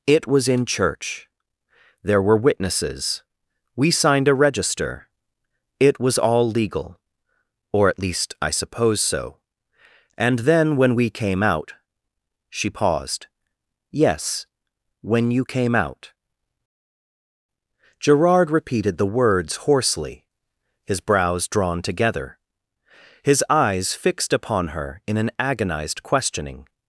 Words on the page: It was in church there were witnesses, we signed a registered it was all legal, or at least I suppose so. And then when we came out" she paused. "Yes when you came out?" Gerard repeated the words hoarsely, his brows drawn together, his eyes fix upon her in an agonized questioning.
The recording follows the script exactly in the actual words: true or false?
false